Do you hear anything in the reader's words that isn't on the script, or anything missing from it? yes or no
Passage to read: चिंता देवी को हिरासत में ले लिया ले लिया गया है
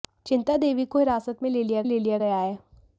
no